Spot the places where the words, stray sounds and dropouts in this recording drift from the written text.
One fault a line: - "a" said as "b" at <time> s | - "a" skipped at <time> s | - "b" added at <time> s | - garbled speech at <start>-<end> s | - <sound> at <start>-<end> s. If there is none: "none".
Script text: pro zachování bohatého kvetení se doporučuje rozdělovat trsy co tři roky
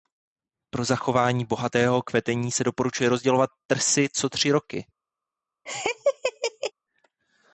- laugh at 5.7-6.7 s